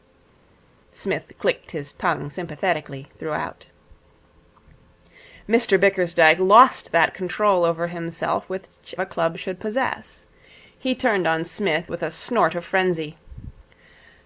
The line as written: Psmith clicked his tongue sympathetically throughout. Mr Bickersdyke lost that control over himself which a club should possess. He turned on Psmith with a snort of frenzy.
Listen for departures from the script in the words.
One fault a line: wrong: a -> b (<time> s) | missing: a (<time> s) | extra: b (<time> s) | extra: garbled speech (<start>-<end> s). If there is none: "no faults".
no faults